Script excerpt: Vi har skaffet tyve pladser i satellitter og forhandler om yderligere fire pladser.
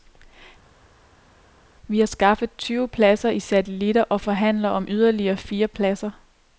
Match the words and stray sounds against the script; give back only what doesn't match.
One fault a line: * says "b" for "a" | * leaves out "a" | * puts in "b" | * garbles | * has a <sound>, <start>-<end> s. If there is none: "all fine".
all fine